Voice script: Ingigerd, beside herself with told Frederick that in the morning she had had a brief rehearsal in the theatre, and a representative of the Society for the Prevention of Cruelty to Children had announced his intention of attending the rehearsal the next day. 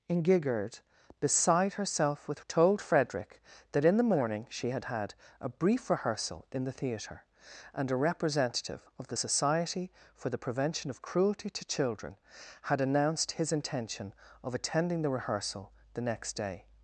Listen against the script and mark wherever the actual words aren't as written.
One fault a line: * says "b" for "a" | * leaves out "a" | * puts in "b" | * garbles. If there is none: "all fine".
all fine